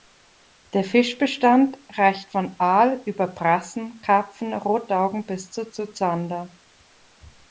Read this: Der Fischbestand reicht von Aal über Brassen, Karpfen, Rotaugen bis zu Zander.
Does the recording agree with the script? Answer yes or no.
no